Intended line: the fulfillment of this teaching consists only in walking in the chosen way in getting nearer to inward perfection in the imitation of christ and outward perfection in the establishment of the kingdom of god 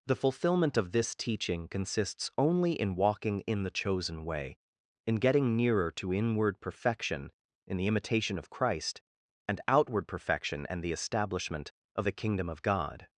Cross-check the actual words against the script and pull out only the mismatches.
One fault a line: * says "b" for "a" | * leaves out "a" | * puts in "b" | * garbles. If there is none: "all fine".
* says "and" for "in"